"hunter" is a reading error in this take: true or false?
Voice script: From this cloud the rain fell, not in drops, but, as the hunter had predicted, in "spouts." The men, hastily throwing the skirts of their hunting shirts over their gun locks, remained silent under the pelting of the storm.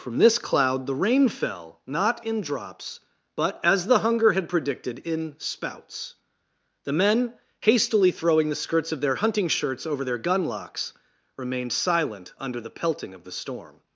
true